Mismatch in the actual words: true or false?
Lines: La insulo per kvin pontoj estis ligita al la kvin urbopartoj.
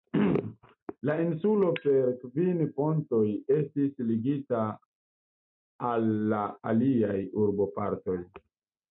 true